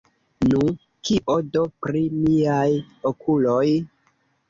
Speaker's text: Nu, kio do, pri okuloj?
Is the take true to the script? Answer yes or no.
no